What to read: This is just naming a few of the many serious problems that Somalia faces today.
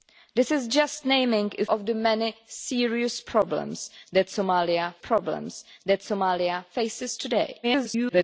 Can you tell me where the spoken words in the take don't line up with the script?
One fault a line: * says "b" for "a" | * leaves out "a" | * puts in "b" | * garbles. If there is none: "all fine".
* leaves out "few"
* puts in "problems that Somalia"
* garbles